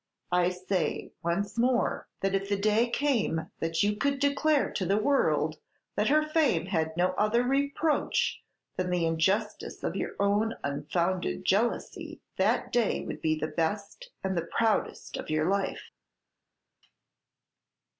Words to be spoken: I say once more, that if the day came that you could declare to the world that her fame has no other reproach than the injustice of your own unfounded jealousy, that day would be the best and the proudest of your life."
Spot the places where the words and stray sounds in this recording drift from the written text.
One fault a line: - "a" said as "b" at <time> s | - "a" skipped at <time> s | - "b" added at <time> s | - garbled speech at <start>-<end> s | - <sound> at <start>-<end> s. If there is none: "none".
- "has" said as "had" at 6.7 s